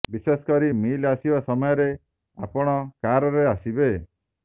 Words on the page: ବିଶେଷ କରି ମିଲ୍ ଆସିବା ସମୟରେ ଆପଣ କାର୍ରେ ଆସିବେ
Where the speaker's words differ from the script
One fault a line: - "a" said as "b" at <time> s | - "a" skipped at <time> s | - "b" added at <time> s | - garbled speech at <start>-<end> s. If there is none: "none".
none